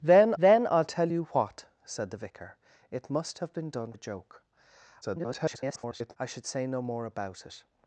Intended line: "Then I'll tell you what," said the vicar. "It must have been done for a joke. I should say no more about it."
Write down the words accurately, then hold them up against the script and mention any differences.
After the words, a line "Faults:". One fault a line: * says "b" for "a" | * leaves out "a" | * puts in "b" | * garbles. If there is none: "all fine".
"Then then I'll tell you what," said the vicar. "It must have been done a joke. [garbled] I should say no more about it."
Faults:
* puts in "then"
* leaves out "for"
* garbles